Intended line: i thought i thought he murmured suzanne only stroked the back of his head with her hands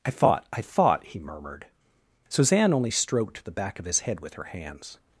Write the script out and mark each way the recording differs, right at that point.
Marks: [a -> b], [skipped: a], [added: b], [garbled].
i thought i thought he murmured suzanne only stroked the back of his head with her hands